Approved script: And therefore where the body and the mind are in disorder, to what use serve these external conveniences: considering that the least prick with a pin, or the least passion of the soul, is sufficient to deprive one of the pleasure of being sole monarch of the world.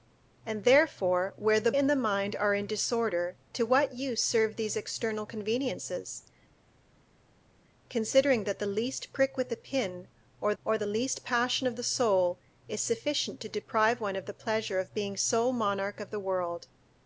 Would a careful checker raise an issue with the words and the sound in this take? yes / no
yes